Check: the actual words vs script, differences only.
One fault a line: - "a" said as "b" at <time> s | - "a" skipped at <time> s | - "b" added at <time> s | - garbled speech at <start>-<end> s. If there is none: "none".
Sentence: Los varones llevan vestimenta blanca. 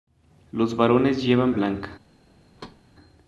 - "vestimenta" skipped at 1.5 s